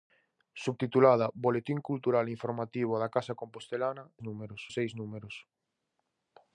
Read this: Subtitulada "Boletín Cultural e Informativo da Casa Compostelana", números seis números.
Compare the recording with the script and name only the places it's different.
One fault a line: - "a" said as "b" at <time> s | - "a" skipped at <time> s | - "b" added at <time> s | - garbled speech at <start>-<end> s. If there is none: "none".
none